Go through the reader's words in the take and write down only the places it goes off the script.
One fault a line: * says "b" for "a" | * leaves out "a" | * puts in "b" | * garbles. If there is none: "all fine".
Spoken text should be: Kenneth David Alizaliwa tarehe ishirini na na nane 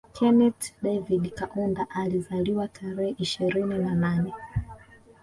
* puts in "Kaunda"
* leaves out "na"